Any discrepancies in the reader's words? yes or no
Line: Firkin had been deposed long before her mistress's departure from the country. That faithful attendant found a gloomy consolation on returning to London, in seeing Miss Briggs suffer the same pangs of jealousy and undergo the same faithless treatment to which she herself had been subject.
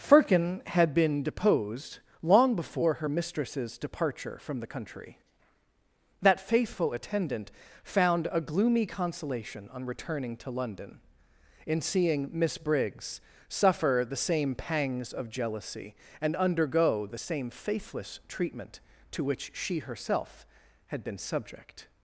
no